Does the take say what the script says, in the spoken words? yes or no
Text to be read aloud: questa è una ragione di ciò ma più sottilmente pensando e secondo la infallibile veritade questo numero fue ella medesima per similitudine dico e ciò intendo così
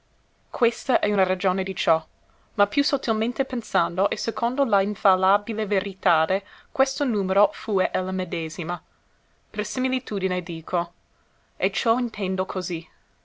yes